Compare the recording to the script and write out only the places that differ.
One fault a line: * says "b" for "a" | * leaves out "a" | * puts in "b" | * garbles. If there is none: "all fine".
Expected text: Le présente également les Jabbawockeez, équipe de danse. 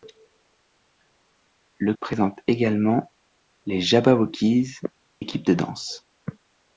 all fine